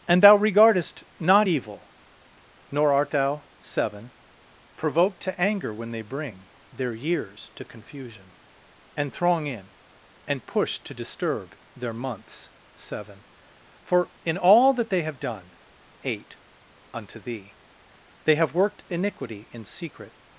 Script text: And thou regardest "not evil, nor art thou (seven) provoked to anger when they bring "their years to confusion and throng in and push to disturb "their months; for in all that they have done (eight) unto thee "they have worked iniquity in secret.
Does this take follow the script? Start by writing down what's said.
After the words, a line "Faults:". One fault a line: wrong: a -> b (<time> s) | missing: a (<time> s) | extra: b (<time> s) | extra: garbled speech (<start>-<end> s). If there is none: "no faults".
And thou regardest "not evil, nor art thou (seven) provoked to anger when they bring "their years to confusion and throng in and push to disturb "their months; seven for in all that they have done (eight) unto thee "they have worked iniquity in secret.
Faults:
extra: seven (12.8 s)